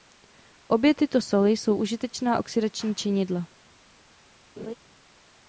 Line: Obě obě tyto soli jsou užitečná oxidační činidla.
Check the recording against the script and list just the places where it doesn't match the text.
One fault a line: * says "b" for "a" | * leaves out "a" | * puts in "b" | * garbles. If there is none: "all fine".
* leaves out "obě"